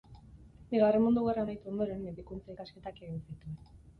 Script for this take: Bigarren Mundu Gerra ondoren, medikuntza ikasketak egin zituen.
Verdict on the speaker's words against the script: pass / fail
fail